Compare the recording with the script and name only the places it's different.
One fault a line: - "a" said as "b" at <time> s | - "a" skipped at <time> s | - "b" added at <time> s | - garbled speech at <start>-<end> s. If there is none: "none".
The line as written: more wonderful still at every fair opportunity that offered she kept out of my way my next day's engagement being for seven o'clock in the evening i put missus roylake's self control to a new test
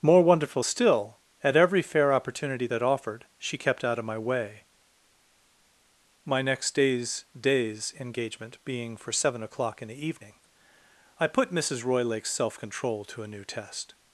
- "day's" added at 7.4 s